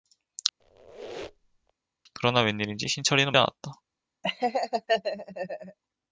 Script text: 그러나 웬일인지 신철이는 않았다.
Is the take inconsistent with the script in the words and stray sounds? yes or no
yes